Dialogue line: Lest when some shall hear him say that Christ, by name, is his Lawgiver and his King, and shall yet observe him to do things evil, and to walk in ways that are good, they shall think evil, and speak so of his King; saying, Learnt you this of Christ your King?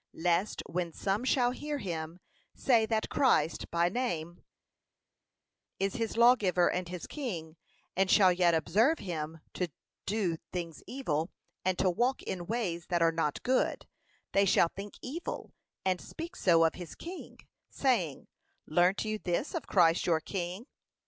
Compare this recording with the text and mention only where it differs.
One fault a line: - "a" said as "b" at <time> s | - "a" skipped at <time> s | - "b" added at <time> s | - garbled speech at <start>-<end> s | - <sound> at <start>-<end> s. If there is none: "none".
- "not" added at 13.1 s